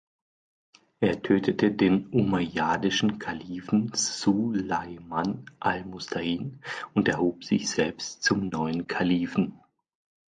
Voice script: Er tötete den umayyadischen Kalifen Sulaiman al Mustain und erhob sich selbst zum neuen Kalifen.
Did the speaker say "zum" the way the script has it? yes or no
yes